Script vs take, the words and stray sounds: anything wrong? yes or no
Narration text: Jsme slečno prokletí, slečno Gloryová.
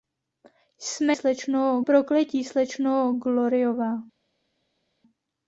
no